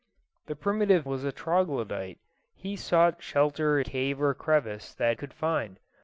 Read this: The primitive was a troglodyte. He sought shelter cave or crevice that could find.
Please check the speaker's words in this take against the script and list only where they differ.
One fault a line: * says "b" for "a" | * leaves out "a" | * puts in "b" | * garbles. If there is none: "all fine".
all fine